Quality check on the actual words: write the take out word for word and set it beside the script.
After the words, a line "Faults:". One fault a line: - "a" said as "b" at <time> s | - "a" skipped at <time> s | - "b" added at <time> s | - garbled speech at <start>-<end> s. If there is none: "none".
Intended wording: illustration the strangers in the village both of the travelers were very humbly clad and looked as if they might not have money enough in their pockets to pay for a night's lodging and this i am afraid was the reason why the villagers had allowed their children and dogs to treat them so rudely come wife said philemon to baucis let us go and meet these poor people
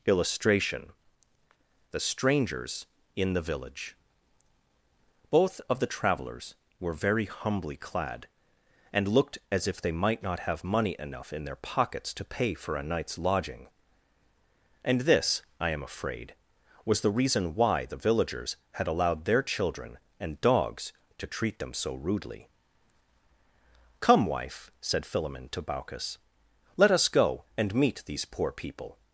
illustration the strangers in the village both of the travelers were very humbly clad and looked as if they might not have money enough in their pockets to pay for a night's lodging and this i am afraid was the reason why the villagers had allowed their children and dogs to treat them so rudely come wife said philemon to baucis let us go and meet these poor people
Faults:
none